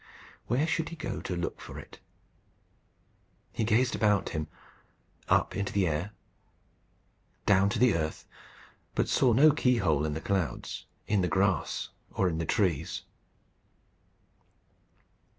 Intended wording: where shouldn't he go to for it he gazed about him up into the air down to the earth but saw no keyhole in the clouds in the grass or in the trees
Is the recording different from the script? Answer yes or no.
yes